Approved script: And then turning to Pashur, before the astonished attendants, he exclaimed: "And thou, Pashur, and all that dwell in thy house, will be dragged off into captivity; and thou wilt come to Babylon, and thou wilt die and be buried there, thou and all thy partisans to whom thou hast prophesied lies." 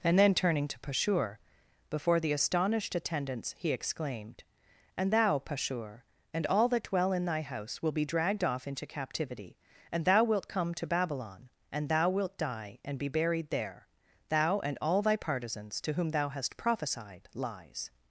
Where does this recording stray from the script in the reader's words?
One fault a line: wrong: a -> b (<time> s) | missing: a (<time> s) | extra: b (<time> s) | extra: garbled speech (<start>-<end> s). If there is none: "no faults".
no faults